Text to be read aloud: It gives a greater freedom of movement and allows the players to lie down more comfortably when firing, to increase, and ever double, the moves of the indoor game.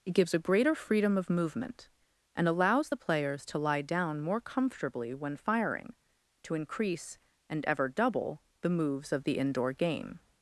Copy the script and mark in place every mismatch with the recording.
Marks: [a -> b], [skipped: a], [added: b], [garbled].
It gives a greater freedom of movement and allows the players to lie down more comfortably when firing, to increase, and ever double, the moves of the indoor game.